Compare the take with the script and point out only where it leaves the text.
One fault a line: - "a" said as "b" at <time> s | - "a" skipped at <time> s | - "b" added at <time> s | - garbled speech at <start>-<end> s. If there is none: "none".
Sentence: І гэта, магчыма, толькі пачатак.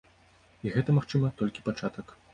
none